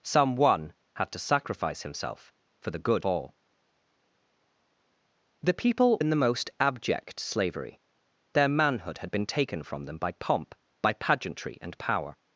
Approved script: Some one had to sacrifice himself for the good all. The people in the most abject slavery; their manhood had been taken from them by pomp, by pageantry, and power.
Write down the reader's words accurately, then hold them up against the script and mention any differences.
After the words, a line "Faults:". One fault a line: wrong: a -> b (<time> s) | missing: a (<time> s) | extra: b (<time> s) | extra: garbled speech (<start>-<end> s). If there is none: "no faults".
Some one had to sacrifice himself for the good all. The people in the most abject slavery; their manhood had been taken from them by pomp, by pageantry, and power.
Faults:
no faults